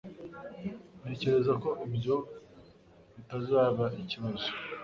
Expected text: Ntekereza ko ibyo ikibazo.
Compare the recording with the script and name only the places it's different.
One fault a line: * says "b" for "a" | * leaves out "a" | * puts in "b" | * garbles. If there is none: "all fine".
* puts in "bitazaba"